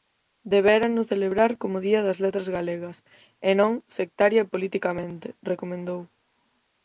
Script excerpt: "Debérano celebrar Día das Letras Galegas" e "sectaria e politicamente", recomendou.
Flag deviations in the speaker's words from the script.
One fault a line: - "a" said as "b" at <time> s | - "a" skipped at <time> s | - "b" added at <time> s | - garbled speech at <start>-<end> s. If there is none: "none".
- "como" added at 1.6 s
- "non" added at 3.6 s